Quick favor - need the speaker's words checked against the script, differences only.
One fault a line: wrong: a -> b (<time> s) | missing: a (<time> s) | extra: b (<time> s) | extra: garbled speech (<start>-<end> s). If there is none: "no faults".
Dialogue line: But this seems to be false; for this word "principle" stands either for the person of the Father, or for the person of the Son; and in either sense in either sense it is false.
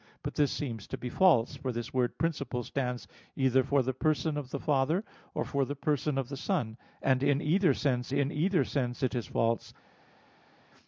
no faults